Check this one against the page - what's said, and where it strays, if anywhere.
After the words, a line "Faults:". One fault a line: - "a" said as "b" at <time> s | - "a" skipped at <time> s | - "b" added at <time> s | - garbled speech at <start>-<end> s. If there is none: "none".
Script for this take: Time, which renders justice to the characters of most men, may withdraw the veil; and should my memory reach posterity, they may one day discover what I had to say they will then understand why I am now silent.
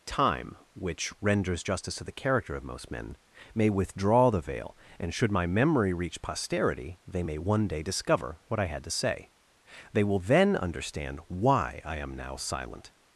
Time, which renders justice to the character of most men, may withdraw the veil; and should my memory reach posterity, they may one day discover what I had to say they will then understand why I am now silent.
Faults:
- "characters" said as "character" at 2.1 s